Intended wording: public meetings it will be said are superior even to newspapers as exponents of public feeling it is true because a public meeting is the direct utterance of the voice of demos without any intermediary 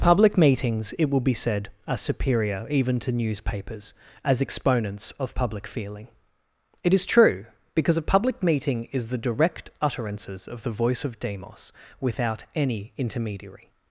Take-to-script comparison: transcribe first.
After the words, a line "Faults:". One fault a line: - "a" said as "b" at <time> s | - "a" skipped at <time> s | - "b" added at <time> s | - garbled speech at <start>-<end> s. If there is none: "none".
public meetings it will be said are superior even to newspapers as exponents of public feeling it is true because a public meeting is the direct utterances of the voice of demos without any intermediary
Faults:
- "utterance" said as "utterances" at 9.8 s